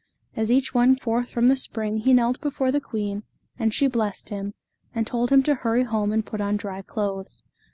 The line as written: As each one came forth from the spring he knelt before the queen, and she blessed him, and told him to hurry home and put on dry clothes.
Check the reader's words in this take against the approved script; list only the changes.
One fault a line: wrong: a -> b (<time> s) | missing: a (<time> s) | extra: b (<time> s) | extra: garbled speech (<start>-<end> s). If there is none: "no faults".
missing: came (0.9 s)